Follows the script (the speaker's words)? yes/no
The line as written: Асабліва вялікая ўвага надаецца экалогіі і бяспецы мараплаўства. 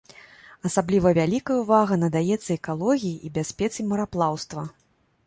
yes